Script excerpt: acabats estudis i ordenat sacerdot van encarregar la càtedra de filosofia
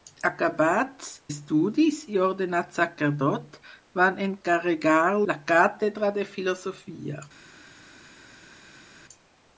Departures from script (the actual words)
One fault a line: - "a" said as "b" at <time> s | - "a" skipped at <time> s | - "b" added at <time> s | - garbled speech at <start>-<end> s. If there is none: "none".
none